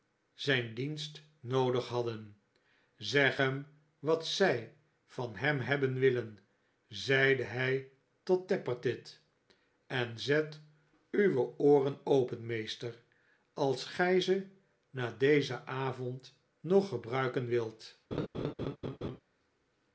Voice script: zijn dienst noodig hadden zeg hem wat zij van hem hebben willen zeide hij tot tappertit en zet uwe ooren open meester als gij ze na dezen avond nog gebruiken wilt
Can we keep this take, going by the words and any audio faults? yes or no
no